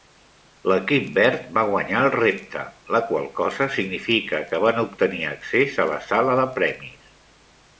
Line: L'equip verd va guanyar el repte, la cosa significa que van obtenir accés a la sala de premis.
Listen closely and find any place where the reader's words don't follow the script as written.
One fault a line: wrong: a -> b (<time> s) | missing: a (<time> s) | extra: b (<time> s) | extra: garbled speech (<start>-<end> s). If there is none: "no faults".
extra: qual (3.1 s)